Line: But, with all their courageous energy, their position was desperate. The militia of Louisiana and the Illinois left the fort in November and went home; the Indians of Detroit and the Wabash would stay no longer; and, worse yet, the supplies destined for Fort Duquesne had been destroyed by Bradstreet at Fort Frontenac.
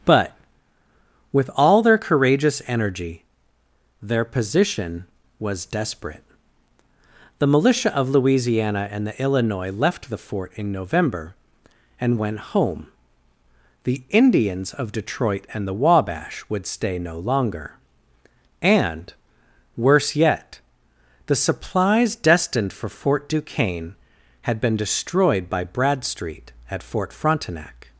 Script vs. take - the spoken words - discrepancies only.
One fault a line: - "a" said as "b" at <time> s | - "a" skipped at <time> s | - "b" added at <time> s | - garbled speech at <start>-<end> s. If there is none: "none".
none